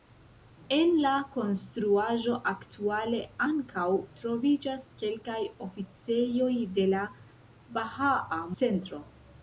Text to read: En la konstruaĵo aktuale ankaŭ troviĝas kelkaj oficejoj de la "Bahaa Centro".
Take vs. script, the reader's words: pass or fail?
pass